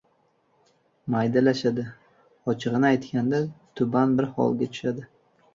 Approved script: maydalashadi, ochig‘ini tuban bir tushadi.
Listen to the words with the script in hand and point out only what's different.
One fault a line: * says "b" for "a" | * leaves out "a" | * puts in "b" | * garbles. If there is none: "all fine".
* puts in "aytganda"
* puts in "holga"